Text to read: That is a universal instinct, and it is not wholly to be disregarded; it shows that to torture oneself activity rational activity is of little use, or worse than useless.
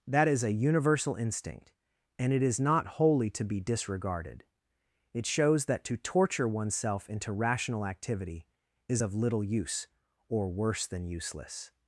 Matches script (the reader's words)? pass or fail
fail